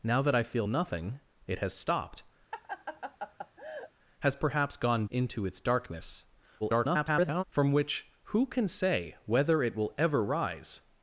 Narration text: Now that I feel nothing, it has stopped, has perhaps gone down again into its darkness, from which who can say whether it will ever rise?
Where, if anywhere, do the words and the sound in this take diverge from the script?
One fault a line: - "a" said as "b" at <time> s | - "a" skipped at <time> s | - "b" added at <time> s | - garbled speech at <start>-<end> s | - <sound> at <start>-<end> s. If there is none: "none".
- laugh at 2.5-3.9 s
- "down again" skipped at 5.1 s
- garbled speech at 6.6-7.4 s